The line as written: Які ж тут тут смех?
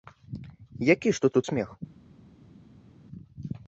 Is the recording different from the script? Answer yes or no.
no